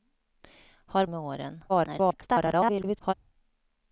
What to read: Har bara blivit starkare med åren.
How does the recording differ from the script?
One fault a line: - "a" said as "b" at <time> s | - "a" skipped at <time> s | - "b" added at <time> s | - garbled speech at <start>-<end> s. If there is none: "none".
- "bara blivit starkare" skipped at 1.1 s
- garbled speech at 1.7-3.1 s